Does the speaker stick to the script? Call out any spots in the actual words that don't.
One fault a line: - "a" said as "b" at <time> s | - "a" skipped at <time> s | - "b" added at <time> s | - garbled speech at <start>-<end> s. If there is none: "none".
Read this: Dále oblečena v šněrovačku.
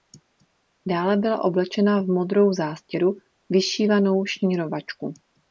- "byla" added at 1.2 s
- "modrou zástěru vyšívanou" added at 2.1 s